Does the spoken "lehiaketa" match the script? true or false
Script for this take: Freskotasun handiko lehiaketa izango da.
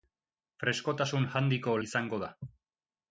false